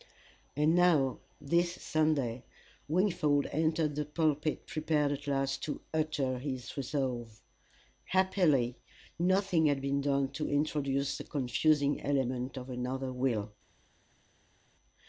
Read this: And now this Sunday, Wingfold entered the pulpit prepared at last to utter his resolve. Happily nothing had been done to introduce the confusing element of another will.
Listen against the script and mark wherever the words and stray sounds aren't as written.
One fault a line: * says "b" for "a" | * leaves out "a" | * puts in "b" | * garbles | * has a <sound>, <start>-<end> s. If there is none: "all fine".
all fine